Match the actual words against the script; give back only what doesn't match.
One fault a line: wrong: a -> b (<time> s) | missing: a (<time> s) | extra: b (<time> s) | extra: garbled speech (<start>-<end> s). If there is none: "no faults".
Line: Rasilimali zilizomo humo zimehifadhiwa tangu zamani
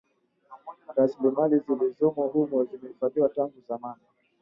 no faults